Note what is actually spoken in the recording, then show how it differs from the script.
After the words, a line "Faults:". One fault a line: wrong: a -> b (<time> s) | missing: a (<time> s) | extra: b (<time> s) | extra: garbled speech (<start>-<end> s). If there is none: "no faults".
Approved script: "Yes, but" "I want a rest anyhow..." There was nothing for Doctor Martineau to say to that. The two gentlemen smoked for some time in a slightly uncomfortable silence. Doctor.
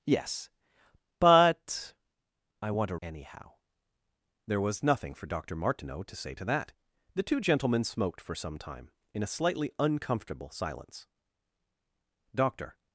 "Yes, but" "I want a anyhow..." There was nothing for Doctor Martineau to say to that. The two gentlemen smoked for some time in a slightly uncomfortable silence. Doctor.
Faults:
missing: rest (3.0 s)